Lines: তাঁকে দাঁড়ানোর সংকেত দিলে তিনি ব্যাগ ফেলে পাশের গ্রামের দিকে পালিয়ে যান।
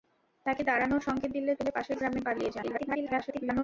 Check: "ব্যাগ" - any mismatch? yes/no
yes